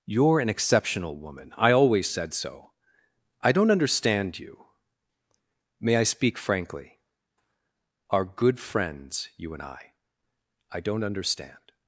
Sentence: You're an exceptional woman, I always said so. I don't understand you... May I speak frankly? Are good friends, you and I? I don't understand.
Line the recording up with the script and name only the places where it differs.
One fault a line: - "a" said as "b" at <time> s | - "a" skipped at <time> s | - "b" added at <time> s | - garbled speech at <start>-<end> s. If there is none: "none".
none